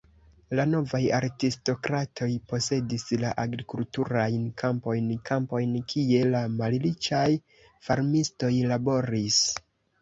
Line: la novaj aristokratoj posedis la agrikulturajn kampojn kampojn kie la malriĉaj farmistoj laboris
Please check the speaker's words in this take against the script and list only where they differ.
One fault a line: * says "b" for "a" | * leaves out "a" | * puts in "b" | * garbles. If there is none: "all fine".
all fine